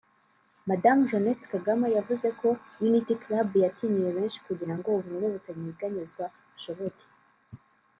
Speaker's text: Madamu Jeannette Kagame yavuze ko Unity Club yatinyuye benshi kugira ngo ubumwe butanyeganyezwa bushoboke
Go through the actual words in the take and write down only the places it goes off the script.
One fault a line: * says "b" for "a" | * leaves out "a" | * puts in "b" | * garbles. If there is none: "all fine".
all fine